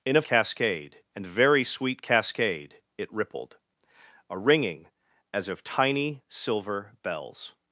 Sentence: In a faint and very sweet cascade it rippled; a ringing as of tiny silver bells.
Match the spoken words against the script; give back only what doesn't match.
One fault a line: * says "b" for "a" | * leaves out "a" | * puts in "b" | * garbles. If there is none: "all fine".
* says "cascade" for "faint"